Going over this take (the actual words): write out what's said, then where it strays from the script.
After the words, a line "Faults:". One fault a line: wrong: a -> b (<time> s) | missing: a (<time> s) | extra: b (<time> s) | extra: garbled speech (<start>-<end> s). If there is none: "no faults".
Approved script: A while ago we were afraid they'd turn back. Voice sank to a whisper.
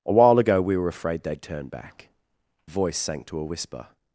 A while ago we were afraid they'd turn back. Voice sank to a whisper.
Faults:
no faults